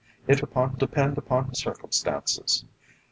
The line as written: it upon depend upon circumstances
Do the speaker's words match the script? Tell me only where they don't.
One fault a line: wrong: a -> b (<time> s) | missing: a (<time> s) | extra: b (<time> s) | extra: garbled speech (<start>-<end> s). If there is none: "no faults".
no faults